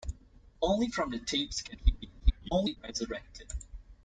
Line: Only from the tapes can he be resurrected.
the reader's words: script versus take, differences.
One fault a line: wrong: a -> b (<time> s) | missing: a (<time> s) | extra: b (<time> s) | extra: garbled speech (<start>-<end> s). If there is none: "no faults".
extra: garbled speech (2.2-2.8 s)